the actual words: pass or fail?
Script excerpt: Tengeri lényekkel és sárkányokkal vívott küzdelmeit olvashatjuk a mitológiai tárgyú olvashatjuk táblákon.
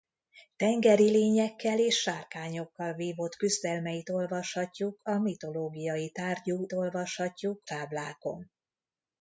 pass